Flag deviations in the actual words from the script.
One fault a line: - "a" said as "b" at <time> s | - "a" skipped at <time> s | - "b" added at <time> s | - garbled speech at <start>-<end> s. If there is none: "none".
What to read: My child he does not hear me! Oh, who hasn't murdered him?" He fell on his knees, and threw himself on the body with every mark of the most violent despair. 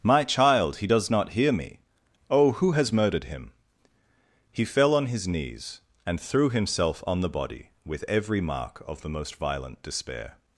- "hasn't" said as "has" at 2.7 s